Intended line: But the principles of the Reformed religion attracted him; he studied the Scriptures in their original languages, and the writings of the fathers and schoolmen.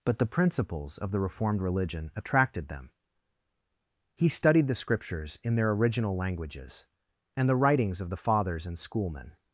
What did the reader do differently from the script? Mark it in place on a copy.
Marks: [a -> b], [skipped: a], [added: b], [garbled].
But the principles of the Reformed religion attracted [him; -> them] he studied the Scriptures in their original languages, and the writings of the fathers and schoolmen.